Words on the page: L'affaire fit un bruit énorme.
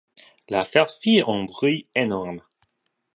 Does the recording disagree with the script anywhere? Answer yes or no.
no